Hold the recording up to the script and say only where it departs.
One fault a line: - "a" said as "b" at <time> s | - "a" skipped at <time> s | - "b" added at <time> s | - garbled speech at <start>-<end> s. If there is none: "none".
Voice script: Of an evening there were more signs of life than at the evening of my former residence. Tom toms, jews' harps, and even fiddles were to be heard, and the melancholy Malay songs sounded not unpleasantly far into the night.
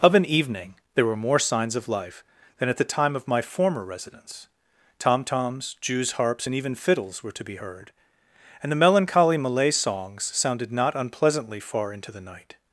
- "evening" said as "time" at 2.8 s